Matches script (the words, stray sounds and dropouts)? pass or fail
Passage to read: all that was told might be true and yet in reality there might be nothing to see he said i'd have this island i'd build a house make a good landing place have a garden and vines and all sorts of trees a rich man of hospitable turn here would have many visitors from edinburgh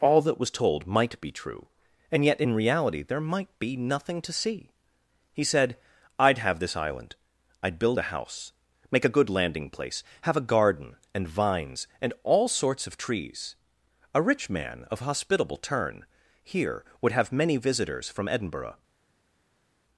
pass